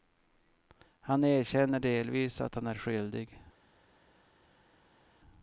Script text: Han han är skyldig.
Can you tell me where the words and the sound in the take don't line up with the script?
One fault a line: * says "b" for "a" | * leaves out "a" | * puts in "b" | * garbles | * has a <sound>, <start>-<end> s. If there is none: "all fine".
* puts in "erkänner delvis att"